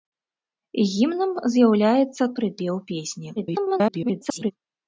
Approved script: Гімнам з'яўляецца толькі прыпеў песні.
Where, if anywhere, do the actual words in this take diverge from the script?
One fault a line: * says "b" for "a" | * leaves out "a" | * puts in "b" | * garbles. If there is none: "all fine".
* leaves out "толькі"
* garbles